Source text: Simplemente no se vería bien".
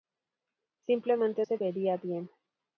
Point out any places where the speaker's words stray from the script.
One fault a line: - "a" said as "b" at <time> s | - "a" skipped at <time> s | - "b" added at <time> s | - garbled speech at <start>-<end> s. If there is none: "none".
- "no" skipped at 1.4 s